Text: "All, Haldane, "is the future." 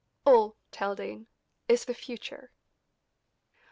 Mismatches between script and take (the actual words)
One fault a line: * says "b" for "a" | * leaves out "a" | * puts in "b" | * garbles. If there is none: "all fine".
all fine